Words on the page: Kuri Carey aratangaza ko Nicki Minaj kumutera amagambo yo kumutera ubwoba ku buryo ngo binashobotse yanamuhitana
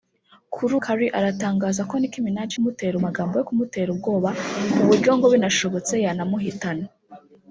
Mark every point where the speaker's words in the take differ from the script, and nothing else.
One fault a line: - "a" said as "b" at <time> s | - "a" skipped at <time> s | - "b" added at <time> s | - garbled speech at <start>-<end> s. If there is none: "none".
none